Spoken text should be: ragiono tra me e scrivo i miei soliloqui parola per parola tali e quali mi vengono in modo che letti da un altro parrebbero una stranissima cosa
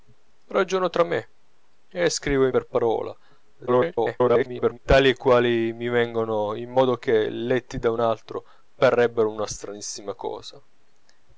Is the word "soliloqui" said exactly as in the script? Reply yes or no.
no